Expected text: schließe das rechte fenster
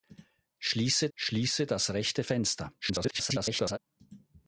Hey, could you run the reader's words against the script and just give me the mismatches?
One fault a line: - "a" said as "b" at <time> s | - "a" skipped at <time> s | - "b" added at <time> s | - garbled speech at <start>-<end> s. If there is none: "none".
- "schließe" added at 1.1 s
- garbled speech at 2.8-3.8 s